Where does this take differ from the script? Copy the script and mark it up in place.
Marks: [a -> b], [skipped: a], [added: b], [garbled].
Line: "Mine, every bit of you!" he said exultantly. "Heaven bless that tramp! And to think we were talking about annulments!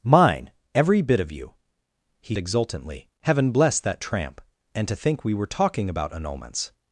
"Mine, every bit of you!" he [skipped: said] exultantly. "Heaven bless that tramp! And to think we were talking about annulments!